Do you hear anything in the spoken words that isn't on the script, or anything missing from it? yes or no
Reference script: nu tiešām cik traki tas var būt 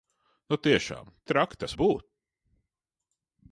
yes